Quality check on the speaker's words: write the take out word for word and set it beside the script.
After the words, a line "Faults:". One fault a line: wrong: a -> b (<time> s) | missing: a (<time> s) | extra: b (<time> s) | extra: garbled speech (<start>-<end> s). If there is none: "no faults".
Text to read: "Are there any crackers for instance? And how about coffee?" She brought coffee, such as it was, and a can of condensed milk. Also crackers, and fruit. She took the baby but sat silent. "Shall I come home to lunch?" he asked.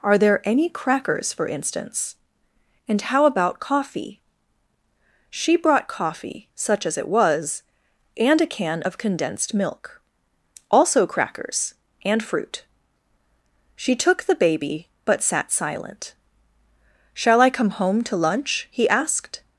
"Are there any crackers for instance? And how about coffee?" She brought coffee, such as it was, and a can of condensed milk. Also crackers, and fruit. She took the baby but sat silent. "Shall I come home to lunch?" he asked.
Faults:
no faults